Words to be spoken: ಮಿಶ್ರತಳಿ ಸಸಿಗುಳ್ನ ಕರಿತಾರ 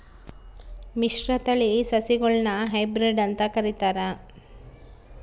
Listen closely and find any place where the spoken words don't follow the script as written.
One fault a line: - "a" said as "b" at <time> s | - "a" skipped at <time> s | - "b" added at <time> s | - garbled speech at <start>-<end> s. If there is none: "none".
- "ಹೈಬ್ರಿಡ್ ಅಂತ" added at 2.7 s